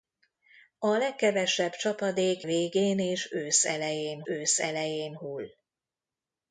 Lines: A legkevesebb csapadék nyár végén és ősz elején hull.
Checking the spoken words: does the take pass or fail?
fail